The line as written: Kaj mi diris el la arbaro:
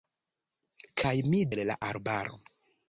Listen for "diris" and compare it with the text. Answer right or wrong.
wrong